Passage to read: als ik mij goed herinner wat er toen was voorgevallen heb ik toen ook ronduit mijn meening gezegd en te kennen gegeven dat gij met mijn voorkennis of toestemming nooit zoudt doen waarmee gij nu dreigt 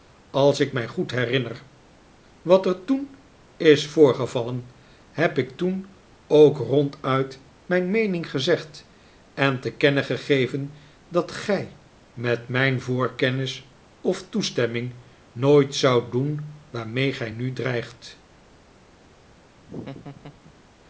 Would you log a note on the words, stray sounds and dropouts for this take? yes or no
yes